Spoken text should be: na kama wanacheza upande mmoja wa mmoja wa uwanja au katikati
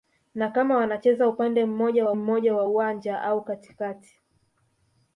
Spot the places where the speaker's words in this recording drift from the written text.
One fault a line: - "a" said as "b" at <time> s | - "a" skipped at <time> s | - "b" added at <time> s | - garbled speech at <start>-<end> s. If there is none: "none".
none